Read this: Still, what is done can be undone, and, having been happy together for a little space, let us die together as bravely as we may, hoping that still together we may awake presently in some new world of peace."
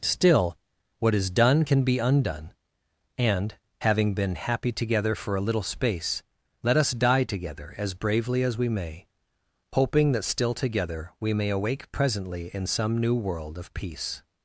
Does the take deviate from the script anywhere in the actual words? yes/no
no